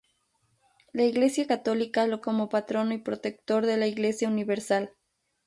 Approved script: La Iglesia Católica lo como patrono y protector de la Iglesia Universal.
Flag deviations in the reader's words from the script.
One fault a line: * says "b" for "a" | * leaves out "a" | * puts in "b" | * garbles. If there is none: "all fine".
all fine